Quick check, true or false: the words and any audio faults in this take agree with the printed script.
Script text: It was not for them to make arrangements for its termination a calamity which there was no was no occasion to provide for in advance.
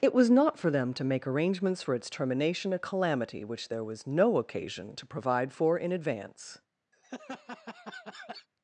false